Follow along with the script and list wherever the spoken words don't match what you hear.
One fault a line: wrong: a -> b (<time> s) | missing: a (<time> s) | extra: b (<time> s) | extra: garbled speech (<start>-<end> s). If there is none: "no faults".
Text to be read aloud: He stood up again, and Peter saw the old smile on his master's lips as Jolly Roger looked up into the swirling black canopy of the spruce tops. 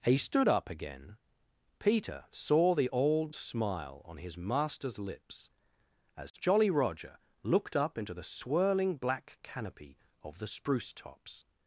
missing: and (1.2 s)